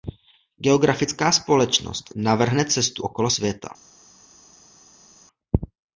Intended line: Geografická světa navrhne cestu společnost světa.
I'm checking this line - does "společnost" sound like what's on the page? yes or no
no